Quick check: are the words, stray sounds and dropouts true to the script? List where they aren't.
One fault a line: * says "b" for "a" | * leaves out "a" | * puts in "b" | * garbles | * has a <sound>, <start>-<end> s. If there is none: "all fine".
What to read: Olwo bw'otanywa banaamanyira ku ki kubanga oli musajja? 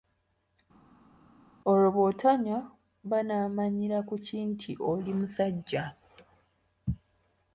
* says "nti" for "kubanga"